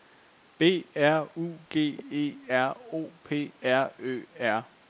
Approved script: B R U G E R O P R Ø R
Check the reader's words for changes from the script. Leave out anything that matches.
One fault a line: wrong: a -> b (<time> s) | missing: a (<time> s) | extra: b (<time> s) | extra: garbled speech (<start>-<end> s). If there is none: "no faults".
no faults